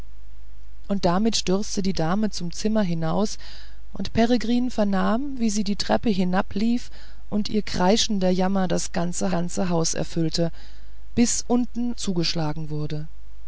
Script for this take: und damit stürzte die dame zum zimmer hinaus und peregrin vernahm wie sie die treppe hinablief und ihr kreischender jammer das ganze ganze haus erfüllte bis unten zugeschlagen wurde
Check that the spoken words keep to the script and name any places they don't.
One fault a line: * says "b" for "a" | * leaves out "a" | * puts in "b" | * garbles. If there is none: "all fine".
all fine